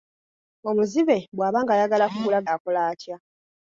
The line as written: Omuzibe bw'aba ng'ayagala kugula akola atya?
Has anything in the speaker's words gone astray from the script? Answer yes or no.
no